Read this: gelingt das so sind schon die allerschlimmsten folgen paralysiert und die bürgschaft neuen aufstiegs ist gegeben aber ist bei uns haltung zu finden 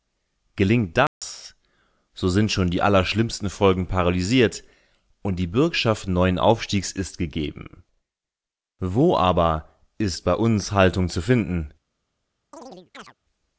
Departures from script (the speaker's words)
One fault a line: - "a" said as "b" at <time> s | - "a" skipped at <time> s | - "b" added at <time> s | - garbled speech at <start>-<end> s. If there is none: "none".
- "wo" added at 8.8 s